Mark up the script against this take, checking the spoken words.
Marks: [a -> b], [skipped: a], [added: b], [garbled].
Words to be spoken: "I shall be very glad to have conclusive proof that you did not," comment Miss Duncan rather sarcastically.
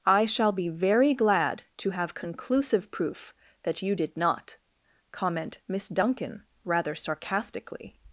"I shall be very glad to have conclusive proof that you did not," comment Miss Duncan rather sarcastically.